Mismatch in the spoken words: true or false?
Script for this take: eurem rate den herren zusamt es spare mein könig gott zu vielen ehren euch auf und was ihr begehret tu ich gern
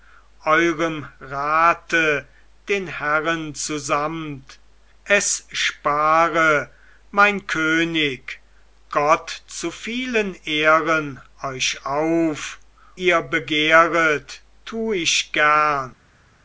true